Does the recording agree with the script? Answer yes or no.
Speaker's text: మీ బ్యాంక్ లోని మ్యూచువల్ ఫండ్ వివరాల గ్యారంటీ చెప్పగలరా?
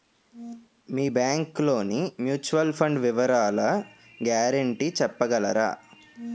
yes